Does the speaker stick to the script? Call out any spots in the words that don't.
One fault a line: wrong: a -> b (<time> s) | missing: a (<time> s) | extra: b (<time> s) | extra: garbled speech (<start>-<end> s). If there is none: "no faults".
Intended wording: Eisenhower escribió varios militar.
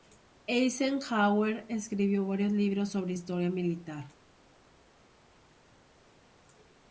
extra: libros sobre historia (2.5 s)